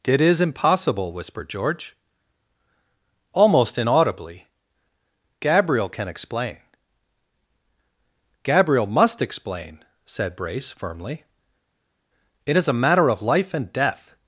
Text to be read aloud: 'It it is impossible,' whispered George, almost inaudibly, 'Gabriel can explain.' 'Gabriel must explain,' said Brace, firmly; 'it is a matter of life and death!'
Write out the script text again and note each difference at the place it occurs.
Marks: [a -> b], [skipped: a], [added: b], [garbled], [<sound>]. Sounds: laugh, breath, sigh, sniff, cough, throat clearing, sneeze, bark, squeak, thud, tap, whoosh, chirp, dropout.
'It [skipped: it] is impossible,' whispered George, almost inaudibly, 'Gabriel can explain.' 'Gabriel must explain,' said Brace, firmly; 'it is a matter of life and death!'